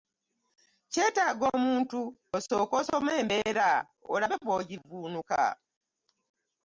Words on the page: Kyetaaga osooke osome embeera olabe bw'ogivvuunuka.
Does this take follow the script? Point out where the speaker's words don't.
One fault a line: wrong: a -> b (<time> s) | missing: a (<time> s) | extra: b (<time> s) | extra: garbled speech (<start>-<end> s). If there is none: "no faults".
extra: omuntu (1.6 s)